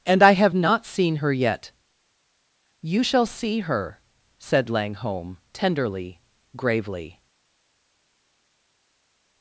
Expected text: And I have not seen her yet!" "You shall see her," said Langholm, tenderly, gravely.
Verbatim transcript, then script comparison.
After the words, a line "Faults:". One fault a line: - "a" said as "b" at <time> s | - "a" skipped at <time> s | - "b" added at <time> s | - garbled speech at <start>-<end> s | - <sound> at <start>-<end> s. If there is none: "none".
And I have not seen her yet!" "You shall see her," said Langholm, tenderly, gravely.
Faults:
none